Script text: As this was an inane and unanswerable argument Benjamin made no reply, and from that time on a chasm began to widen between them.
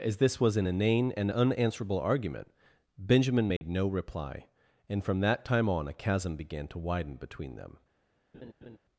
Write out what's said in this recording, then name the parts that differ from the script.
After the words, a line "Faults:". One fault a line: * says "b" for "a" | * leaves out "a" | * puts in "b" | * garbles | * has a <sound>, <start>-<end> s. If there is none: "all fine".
As this was an inane and unanswerable argument Benjamin made no reply, and from that time on a chasm began to widen between them.
Faults:
* has a dropout, 3.6-3.6 s
* has a laugh, 8.3-8.8 s